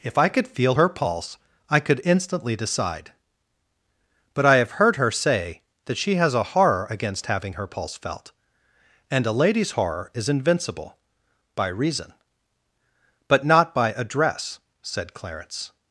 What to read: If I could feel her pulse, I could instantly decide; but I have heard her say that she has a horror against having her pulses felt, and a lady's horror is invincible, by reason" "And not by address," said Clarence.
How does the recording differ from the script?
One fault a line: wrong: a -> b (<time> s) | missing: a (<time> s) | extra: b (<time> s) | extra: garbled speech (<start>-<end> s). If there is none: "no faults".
wrong: pulses -> pulse (7.7 s)
wrong: And -> But (13.3 s)